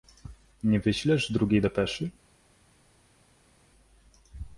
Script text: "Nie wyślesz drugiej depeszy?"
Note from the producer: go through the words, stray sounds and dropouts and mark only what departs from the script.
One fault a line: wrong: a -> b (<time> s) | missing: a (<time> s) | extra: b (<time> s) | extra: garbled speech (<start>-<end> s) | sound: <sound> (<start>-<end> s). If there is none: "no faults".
no faults